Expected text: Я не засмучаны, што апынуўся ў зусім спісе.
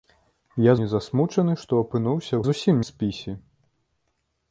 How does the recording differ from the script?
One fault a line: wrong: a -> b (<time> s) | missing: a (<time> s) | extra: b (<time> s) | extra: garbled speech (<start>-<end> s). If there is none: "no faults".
no faults